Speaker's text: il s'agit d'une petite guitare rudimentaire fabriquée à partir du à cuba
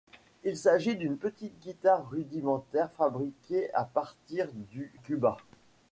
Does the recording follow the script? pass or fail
fail